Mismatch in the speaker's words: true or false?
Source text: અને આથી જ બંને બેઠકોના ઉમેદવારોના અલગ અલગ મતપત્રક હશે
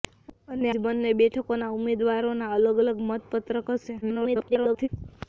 true